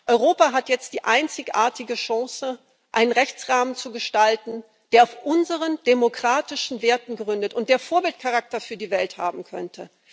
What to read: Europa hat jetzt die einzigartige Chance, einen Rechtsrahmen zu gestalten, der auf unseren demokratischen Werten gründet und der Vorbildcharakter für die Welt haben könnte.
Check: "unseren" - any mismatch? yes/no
no